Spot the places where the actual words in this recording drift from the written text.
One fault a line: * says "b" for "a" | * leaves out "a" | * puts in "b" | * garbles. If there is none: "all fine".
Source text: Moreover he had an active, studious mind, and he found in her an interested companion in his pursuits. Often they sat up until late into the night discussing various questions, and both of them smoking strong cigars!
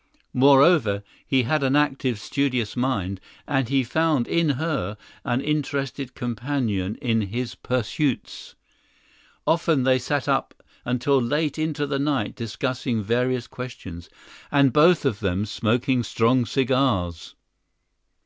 all fine